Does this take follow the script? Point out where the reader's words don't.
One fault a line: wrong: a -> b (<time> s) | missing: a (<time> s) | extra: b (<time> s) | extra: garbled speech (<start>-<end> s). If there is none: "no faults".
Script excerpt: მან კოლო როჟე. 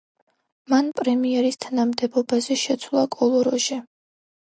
extra: პრემიერის თანამდებობაზე შეცვალა (1.0 s)